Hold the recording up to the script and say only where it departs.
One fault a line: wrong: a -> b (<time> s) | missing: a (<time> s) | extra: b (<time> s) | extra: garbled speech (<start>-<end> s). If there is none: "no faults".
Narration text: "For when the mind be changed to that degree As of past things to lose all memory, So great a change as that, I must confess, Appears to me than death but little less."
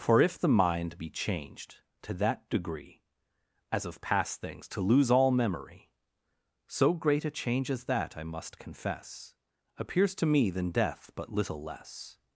wrong: when -> if (0.2 s)